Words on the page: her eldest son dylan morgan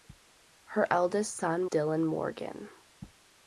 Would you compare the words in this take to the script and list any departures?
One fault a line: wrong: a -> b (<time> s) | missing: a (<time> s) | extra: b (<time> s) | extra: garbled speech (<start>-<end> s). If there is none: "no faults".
no faults